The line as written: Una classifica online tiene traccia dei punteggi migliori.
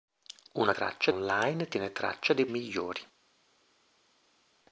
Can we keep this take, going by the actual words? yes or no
no